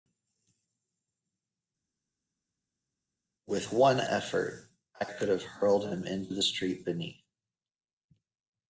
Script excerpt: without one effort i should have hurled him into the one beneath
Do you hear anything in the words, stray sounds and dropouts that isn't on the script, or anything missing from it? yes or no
yes